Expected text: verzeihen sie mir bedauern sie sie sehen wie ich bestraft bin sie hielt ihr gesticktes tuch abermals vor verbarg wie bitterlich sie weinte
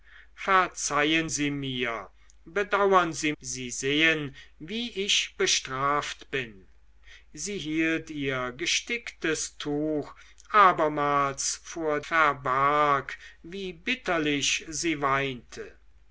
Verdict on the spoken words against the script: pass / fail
pass